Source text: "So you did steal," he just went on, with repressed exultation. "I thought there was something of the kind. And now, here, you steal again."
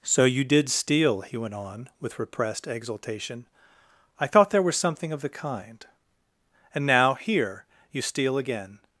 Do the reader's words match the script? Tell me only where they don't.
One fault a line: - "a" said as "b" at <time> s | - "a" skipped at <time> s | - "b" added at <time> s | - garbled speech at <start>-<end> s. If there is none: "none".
- "just" skipped at 1.4 s